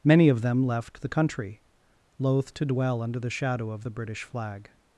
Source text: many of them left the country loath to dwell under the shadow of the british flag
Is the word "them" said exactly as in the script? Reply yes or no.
yes